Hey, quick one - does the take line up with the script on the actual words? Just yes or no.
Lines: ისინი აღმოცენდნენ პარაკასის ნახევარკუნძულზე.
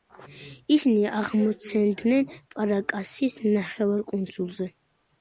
yes